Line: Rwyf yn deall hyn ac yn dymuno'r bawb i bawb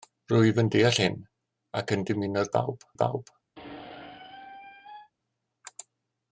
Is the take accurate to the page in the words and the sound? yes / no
no